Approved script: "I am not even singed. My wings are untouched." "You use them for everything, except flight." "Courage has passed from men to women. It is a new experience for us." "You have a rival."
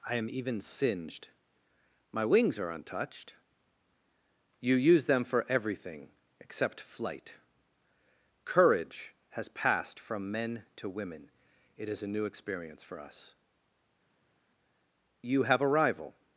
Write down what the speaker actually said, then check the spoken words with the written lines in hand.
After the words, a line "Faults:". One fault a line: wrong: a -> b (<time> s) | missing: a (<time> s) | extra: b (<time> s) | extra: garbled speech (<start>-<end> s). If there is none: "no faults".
"I am even singed. My wings are untouched." "You use them for everything, except flight." "Courage has passed from men to women. It is a new experience for us." "You have a rival."
Faults:
missing: not (0.3 s)